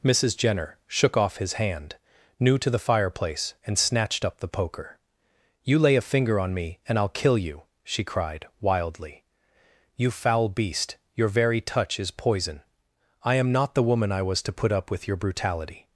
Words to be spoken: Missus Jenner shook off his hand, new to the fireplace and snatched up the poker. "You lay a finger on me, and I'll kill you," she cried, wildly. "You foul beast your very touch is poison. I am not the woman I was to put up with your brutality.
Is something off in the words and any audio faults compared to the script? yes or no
no